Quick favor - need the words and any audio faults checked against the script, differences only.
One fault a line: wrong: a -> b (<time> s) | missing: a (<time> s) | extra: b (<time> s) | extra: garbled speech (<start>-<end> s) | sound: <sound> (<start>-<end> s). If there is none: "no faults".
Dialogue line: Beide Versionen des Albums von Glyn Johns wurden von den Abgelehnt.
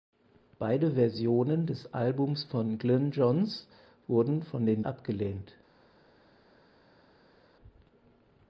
no faults